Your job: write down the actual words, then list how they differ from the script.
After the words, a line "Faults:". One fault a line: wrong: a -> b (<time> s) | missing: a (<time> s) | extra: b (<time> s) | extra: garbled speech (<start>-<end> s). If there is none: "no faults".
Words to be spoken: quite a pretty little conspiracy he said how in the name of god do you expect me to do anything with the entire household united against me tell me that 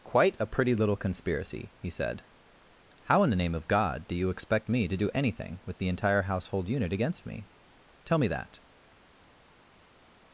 quite a pretty little conspiracy he said how in the name of god do you expect me to do anything with the entire household unit against me tell me that
Faults:
wrong: united -> unit (6.7 s)